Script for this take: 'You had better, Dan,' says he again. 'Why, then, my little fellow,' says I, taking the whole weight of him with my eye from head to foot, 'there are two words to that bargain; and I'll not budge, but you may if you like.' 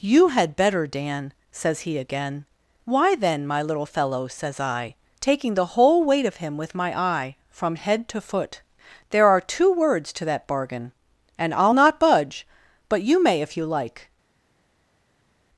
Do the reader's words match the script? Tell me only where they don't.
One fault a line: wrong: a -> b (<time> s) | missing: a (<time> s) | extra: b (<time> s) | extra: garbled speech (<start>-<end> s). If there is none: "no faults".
no faults